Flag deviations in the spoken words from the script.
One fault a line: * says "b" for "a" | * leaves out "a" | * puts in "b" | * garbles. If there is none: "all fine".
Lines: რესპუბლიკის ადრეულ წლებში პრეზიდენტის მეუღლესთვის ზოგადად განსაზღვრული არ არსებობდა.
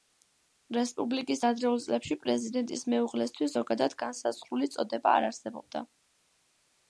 * puts in "წოდება"